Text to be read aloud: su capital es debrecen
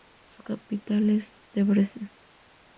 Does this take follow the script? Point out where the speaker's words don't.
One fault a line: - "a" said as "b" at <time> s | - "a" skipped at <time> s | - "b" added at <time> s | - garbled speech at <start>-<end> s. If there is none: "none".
none